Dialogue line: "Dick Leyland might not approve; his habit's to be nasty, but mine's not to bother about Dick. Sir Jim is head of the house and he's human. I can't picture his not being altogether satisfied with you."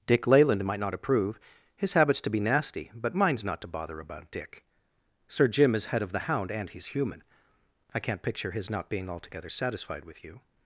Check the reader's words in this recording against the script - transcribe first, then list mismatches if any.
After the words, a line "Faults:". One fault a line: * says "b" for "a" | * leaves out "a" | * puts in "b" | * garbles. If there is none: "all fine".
"Dick Leyland might not approve; his habit's to be nasty, but mine's not to bother about Dick. Sir Jim is head of the hound and he's human. I can't picture his not being altogether satisfied with you."
Faults:
* says "hound" for "house"